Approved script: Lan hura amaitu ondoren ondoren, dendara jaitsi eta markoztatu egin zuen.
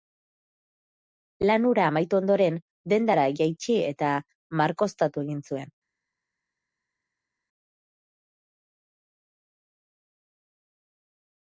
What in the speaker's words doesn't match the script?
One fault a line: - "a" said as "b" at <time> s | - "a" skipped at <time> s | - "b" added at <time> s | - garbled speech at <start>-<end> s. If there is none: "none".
- "ondoren" skipped at 2.6 s